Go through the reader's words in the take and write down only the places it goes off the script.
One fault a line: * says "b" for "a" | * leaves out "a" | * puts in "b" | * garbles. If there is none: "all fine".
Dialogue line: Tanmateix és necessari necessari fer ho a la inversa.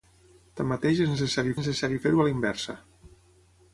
all fine